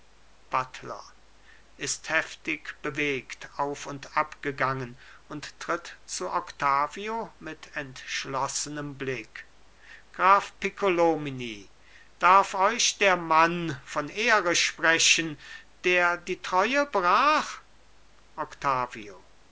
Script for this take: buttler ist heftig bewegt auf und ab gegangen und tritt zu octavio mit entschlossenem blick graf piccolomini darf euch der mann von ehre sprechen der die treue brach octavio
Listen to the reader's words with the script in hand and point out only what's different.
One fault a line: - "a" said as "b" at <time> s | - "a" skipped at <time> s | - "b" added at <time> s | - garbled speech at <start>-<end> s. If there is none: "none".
none